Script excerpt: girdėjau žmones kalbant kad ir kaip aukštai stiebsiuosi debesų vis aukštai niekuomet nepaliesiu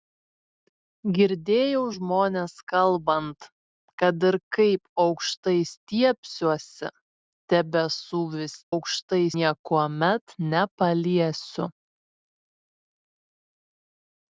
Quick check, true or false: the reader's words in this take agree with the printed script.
true